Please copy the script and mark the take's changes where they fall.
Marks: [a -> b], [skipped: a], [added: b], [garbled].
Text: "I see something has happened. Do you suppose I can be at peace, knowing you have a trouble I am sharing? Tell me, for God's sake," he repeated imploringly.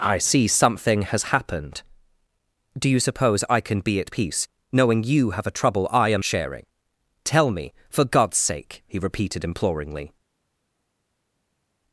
"I see something has happened. Do you suppose I can be at peace, knowing you have a trouble I am sharing? Tell me, for God's sake," he repeated imploringly.